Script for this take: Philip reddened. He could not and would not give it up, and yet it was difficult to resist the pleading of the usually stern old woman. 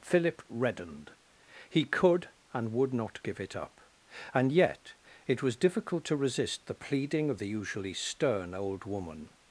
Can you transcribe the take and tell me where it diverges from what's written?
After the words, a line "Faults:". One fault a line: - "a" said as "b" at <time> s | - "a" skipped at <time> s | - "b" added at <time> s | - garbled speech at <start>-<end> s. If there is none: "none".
Philip reddened. He could and would not give it up, and yet it was difficult to resist the pleading of the usually stern old woman.
Faults:
- "not" skipped at 2.3 s